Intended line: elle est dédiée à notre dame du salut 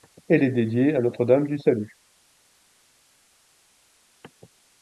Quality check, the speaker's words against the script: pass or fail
pass